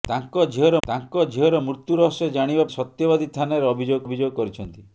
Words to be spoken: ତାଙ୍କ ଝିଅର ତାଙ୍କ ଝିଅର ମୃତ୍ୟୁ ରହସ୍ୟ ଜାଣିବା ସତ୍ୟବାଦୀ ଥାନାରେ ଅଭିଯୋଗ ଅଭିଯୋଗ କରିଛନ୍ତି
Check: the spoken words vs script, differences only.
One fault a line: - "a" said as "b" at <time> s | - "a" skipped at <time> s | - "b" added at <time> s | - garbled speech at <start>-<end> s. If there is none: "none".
none